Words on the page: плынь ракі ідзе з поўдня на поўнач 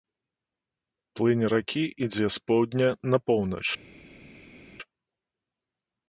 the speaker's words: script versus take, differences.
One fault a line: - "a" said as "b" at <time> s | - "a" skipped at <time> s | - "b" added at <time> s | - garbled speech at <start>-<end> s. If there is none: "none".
none